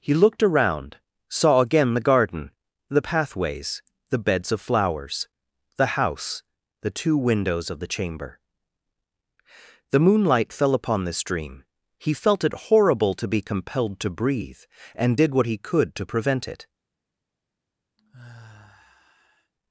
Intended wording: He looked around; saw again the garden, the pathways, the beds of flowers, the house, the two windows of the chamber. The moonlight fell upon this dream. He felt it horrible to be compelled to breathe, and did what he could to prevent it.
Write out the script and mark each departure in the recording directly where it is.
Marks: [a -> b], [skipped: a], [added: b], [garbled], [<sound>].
He looked around; saw again the garden, the pathways, the beds of flowers, the house, the two windows of the chamber. The moonlight fell upon this dream. He felt it horrible to be compelled to breathe, and did what he could to prevent it. [sigh]